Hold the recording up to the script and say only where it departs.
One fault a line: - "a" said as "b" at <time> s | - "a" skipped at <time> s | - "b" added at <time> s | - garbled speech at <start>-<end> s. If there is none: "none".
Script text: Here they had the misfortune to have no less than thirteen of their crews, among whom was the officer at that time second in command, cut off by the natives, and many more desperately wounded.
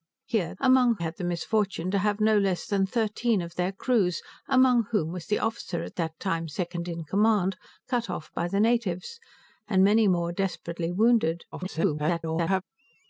- "they" said as "among" at 0.6 s
- garbled speech at 11.5-12.6 s